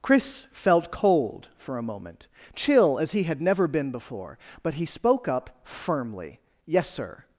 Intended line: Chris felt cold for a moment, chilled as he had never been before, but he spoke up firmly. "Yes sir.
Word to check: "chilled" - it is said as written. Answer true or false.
false